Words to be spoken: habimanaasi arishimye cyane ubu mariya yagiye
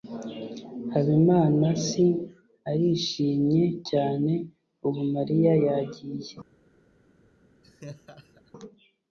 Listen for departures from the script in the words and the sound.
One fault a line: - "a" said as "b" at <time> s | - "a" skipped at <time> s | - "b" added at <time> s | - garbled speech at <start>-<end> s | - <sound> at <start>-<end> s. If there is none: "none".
- laugh at 7.6-8.5 s